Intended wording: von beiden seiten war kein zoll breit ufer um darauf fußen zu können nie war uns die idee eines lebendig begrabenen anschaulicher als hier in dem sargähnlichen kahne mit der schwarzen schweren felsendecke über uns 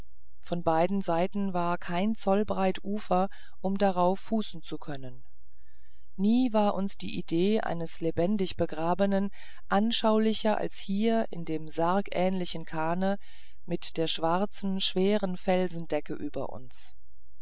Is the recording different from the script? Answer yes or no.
no